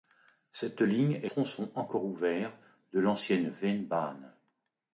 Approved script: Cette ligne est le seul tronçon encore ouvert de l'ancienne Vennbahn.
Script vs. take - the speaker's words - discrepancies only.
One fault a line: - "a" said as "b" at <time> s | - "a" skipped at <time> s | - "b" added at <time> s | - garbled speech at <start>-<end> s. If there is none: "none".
- "le seul" skipped at 1.3 s